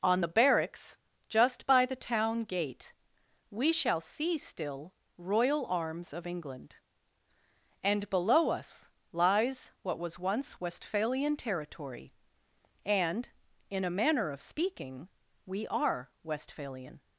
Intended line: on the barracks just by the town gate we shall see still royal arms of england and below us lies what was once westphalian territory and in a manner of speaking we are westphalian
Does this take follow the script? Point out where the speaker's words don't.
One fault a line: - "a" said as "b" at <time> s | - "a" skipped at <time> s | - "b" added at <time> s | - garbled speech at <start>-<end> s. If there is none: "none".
none